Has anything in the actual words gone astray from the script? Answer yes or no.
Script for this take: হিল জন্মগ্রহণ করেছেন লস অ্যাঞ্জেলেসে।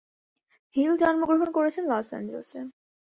no